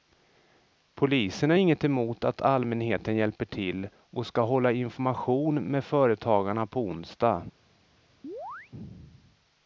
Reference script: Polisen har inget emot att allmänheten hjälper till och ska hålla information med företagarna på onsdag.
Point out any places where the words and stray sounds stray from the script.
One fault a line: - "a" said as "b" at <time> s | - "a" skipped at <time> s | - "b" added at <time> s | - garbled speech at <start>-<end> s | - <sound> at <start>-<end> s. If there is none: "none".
- chirp at 8.2-8.7 s